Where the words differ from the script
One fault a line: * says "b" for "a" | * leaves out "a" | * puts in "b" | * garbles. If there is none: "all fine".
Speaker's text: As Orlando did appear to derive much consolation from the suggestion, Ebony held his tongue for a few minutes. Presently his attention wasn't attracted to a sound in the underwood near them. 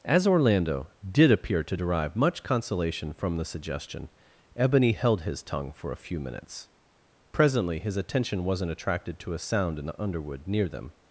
all fine